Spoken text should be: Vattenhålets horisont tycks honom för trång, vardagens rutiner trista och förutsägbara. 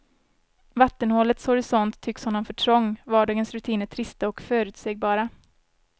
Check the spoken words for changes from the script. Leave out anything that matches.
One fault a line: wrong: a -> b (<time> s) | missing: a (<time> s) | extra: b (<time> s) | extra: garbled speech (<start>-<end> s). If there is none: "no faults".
no faults